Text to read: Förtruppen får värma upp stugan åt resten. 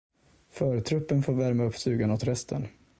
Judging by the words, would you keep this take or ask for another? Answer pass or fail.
pass